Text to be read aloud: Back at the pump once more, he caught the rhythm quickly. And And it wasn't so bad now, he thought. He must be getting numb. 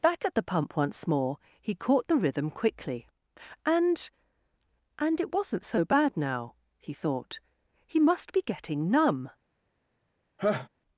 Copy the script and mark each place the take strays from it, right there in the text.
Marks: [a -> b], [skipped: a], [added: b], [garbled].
Back at the pump once more, he caught the rhythm quickly. And And it wasn't so bad now, he thought. He must be getting numb.